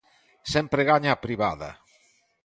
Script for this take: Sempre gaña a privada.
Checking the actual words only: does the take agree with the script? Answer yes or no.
yes